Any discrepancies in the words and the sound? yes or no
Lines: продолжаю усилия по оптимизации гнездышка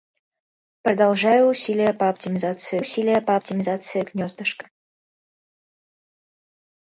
yes